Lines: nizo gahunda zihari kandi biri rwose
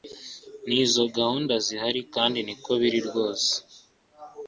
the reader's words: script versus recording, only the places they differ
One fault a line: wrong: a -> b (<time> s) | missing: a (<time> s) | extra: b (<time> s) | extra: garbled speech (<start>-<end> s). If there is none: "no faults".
extra: niko (2.5 s)